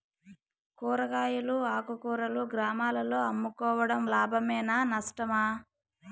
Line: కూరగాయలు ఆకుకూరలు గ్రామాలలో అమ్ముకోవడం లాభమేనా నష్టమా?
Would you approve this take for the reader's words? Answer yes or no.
yes